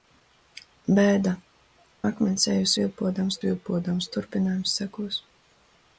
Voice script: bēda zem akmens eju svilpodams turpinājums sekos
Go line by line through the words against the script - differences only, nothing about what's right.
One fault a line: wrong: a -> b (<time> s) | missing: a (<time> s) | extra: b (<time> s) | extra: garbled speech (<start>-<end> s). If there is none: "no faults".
missing: zem (1.3 s)
extra: svilpodams (3.4 s)